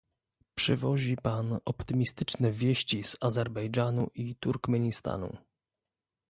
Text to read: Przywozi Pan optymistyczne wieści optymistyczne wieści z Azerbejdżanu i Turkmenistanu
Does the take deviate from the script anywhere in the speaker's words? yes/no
yes